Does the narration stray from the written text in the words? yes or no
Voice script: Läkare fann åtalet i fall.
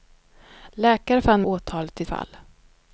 no